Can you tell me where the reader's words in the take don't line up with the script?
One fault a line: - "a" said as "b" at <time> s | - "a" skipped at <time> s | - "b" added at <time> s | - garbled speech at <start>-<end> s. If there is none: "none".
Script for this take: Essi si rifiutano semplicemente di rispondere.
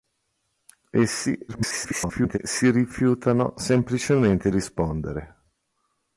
- garbled speech at 1.5-2.4 s
- "di" skipped at 4.5 s